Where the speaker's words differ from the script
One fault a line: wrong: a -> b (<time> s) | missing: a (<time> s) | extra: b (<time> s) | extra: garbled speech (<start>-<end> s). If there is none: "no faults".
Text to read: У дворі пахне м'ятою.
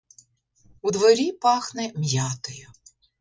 no faults